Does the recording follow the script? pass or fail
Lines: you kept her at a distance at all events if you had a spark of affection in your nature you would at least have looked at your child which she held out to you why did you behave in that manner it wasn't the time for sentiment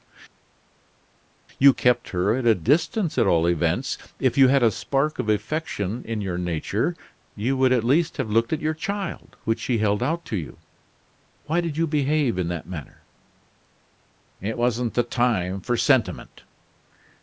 pass